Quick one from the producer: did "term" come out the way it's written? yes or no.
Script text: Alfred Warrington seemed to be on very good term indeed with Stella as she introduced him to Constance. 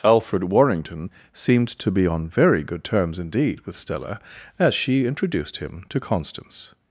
no